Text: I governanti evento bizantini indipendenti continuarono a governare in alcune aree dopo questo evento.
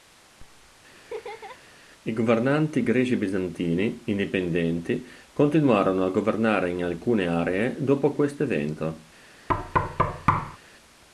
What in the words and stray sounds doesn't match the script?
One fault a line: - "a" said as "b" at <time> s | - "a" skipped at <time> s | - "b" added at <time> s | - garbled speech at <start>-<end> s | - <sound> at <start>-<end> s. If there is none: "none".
- laugh at 0.9-1.6 s
- "evento" said as "greci" at 2.8 s
- thud at 9.5-10.6 s